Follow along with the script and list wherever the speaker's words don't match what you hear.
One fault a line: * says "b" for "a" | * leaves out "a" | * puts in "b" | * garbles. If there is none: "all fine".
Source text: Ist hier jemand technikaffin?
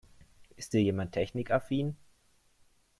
all fine